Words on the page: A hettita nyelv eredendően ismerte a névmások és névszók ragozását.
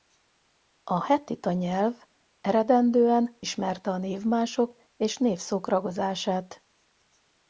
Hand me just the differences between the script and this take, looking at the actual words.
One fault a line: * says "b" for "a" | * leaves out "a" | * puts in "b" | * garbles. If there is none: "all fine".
all fine